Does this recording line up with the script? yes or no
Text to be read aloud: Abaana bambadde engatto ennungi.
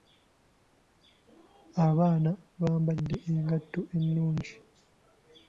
yes